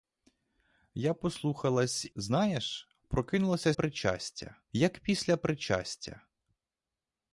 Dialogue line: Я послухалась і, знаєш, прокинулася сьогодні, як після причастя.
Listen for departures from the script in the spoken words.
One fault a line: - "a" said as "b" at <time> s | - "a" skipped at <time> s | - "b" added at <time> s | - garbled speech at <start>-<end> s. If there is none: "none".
- "і" skipped at 2.0 s
- "сьогодні" said as "причастя" at 3.7 s